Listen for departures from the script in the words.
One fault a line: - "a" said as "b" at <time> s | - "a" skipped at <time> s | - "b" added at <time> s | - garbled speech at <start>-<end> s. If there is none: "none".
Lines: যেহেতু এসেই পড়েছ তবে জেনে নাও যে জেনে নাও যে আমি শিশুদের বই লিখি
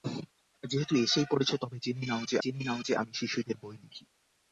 none